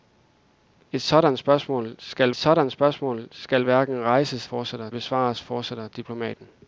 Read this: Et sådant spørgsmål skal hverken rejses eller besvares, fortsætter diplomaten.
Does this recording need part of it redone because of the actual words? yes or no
yes